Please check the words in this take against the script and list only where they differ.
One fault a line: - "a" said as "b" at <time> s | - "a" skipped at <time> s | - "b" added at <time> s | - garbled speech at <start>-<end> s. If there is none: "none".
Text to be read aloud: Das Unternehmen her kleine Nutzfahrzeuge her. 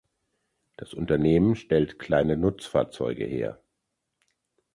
- "her" said as "stellt" at 1.6 s